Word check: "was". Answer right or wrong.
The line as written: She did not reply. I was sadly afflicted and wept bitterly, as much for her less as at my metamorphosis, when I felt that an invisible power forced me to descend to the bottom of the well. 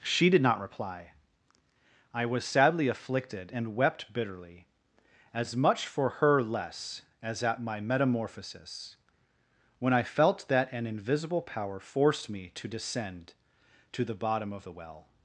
right